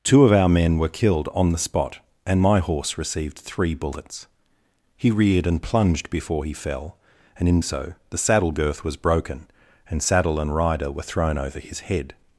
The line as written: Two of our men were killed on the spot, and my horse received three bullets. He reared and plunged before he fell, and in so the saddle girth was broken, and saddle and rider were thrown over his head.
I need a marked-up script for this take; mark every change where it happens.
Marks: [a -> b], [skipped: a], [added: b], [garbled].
Two of our men were killed on the spot, and my horse received three bullets. He reared and plunged before he fell, and in so the saddle girth was broken, and saddle and rider were thrown over his head.